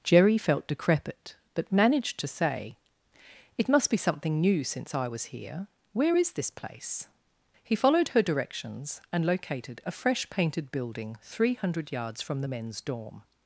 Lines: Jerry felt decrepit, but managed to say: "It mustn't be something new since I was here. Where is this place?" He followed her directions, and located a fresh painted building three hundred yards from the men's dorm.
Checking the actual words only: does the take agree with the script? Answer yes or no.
no